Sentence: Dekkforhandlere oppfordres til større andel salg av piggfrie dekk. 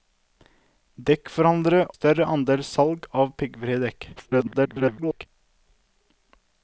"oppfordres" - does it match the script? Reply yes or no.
no